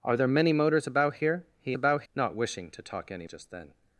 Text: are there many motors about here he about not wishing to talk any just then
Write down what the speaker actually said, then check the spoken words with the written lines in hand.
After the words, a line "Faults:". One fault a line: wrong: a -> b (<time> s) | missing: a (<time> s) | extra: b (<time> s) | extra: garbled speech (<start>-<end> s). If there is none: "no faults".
are there many motors about here he about not wishing to talk any just then
Faults:
no faults